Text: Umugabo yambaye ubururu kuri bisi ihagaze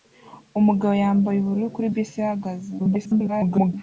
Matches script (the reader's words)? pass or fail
fail